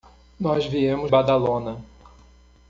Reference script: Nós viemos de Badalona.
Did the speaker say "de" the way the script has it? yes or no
no